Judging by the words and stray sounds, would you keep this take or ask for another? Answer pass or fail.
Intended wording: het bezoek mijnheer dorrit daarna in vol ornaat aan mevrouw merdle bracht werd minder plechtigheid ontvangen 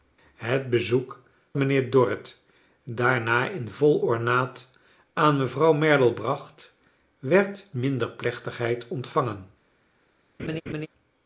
fail